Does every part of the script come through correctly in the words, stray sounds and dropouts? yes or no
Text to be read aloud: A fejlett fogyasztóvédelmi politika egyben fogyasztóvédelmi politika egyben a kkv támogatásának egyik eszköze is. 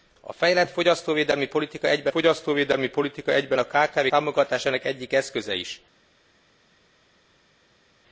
yes